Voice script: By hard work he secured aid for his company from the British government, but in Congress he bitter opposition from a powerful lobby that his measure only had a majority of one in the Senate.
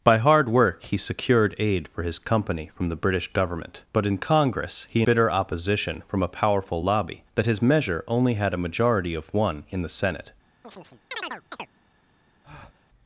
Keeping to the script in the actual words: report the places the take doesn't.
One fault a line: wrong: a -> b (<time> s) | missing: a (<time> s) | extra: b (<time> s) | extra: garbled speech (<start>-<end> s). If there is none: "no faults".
no faults